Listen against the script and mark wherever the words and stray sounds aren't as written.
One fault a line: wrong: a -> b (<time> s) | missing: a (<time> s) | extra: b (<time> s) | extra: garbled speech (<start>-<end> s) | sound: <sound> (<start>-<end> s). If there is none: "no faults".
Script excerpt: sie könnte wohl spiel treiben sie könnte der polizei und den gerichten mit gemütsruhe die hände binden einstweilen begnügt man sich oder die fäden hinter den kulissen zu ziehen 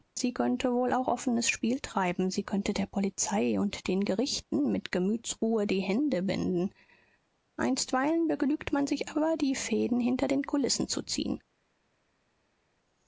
extra: auch offenes (0.9 s)
wrong: oder -> aber (9.1 s)